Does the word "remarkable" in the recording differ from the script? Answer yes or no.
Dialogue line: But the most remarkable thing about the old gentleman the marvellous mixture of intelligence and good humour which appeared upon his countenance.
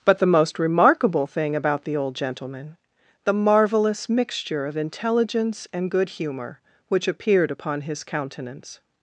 no